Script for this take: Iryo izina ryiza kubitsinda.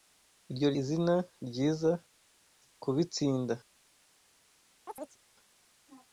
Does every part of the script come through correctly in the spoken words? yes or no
yes